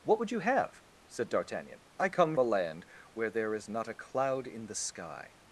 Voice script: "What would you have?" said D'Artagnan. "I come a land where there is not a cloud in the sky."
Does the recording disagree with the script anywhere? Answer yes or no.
no